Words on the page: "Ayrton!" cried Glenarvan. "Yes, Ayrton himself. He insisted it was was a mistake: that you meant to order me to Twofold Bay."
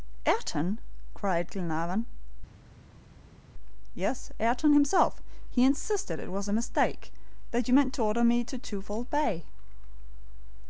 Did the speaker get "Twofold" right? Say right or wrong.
right